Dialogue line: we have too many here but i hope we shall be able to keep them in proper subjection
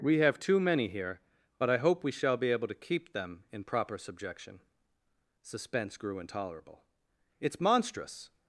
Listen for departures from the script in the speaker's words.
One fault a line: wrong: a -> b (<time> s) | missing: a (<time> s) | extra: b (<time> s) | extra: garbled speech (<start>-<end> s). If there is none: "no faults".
extra: suspense grew intolerable it's monstrous (5.4 s)